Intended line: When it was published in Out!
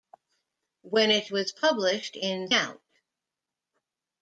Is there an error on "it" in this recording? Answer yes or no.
no